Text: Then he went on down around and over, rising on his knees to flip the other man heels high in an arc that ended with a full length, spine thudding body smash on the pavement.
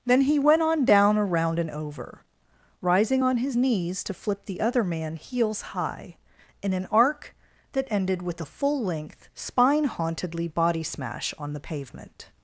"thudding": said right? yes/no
no